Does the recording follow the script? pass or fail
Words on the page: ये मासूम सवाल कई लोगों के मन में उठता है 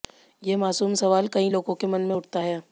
pass